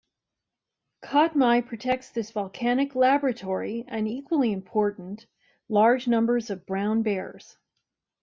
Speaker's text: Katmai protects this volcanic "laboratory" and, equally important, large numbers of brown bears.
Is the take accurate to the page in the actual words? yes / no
yes